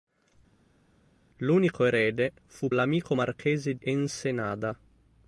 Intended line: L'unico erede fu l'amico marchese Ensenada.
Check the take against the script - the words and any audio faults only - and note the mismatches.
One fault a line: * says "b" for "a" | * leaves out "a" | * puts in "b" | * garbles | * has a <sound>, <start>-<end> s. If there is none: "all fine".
all fine